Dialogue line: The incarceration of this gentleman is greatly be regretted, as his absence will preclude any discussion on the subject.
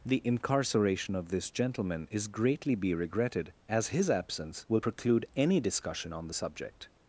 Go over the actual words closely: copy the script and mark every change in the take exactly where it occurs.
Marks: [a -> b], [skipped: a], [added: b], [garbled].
The incarceration of this gentleman is greatly be regretted, as his absence will preclude any discussion on the subject.